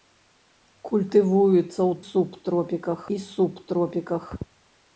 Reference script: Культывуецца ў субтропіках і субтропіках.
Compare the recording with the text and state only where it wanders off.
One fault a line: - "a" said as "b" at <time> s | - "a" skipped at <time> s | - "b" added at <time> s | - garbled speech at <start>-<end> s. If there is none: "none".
none